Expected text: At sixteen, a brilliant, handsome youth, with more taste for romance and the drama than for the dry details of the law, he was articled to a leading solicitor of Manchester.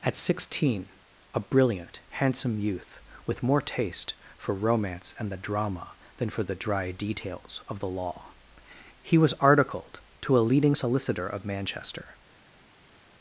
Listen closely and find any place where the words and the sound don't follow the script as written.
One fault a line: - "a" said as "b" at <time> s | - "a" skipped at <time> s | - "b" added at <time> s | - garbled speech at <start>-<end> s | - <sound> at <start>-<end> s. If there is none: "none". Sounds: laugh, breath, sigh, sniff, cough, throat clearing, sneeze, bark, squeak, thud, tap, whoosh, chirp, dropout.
none